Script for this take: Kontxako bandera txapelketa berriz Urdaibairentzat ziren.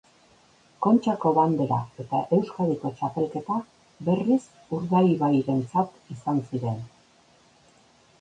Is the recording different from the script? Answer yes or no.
yes